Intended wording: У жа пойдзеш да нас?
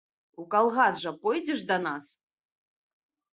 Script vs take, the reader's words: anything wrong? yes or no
yes